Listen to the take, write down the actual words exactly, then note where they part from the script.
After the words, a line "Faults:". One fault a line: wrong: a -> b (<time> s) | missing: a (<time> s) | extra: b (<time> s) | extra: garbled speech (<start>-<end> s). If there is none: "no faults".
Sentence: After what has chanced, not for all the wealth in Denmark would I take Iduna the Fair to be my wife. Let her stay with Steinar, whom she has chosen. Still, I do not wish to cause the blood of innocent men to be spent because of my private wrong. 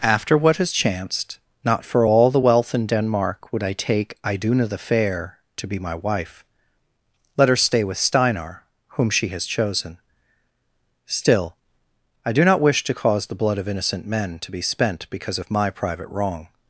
After what has chanced, not for all the wealth in Denmark would I take Iduna the Fair to be my wife. Let her stay with Steinar, whom she has chosen. Still, I do not wish to cause the blood of innocent men to be spent because of my private wrong.
Faults:
no faults